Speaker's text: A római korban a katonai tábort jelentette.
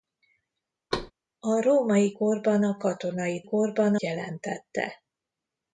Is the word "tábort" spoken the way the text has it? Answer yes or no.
no